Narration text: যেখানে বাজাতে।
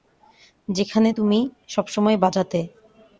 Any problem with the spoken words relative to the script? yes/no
yes